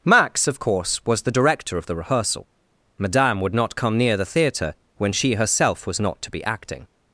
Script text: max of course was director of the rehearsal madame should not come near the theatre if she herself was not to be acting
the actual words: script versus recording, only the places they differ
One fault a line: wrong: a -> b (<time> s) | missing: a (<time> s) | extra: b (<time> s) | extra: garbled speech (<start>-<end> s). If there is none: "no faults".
extra: the (1.2 s)
wrong: should -> would (3.4 s)
wrong: if -> when (5.0 s)